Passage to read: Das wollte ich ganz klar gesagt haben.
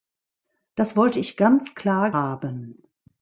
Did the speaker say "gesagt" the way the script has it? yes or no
no